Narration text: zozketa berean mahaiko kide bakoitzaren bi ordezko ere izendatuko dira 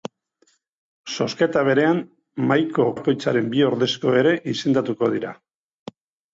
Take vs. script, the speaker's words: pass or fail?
fail